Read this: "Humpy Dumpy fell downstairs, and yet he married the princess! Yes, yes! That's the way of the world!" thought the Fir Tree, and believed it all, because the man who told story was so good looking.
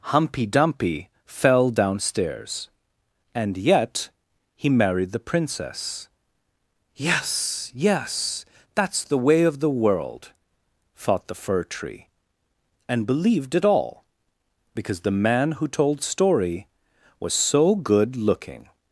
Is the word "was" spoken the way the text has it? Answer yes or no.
yes